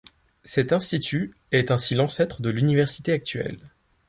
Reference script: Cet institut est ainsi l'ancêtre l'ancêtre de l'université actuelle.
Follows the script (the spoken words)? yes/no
no